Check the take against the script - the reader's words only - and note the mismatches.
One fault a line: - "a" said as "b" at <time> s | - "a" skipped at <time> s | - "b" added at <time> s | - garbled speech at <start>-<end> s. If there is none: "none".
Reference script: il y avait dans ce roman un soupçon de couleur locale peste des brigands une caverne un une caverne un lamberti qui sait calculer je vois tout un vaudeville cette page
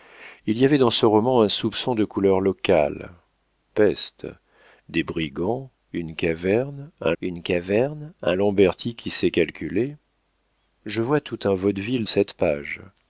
none